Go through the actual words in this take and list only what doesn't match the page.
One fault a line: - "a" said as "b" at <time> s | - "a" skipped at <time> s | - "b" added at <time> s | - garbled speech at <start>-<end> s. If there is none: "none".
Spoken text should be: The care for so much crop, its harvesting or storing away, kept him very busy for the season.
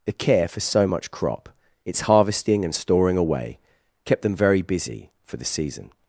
- "or" said as "and" at 2.6 s
- "him" said as "them" at 4.2 s